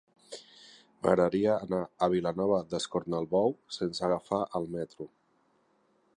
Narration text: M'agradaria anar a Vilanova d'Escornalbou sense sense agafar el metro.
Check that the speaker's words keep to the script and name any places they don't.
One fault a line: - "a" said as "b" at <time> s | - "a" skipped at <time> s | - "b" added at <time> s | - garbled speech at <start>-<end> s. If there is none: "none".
- "sense" skipped at 4.1 s